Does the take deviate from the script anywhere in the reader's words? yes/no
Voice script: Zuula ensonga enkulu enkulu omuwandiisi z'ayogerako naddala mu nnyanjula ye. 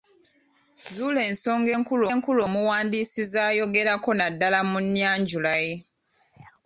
no